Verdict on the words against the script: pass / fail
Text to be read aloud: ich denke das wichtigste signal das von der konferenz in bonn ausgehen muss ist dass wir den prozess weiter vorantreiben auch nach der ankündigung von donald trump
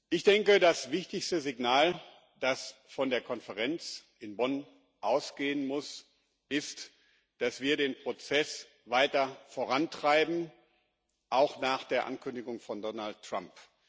pass